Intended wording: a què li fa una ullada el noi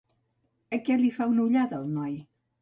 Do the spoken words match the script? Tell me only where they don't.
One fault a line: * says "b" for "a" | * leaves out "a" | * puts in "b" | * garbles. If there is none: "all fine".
all fine